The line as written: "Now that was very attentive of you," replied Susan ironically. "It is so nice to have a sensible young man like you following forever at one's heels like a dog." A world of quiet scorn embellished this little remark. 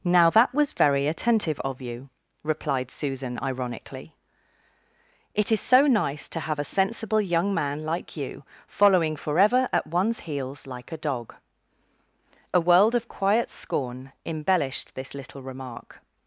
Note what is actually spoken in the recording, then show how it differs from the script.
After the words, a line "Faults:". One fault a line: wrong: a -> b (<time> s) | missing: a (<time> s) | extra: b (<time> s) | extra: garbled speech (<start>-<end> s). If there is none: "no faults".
"Now that was very attentive of you," replied Susan ironically. "It is so nice to have a sensible young man like you following forever at one's heels like a dog." A world of quiet scorn embellished this little remark.
Faults:
no faults